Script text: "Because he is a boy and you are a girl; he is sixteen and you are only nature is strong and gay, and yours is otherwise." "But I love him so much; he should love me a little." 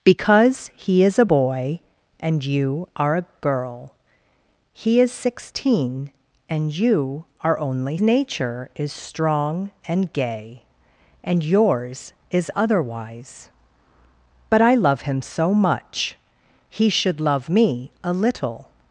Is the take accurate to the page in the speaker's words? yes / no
yes